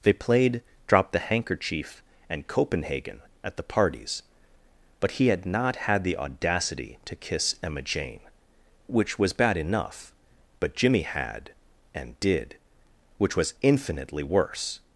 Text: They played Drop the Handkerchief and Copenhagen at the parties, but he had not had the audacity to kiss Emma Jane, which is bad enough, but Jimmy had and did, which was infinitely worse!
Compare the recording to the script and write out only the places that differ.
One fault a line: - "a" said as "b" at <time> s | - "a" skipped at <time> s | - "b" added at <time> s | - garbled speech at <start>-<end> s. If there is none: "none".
- "is" said as "was" at 9.2 s